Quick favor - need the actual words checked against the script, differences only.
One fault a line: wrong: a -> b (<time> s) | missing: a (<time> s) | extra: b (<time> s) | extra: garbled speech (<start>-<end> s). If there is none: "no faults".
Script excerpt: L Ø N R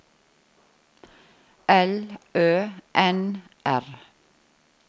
no faults